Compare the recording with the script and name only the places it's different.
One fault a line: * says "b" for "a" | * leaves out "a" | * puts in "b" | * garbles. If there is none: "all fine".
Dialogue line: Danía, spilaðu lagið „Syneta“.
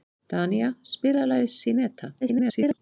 * garbles